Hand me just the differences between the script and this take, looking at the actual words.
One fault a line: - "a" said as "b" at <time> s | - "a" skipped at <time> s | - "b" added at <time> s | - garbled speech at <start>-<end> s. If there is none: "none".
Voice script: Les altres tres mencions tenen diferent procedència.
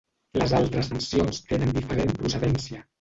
- "tres" skipped at 0.9 s